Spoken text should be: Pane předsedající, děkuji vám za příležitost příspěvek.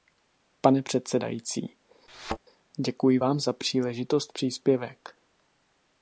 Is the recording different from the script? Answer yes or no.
no